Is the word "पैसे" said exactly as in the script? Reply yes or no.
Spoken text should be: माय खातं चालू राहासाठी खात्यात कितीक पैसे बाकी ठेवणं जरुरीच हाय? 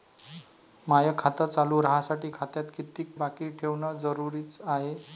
no